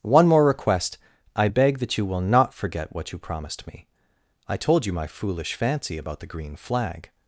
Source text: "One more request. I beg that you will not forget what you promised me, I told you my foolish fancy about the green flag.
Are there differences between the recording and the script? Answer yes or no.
no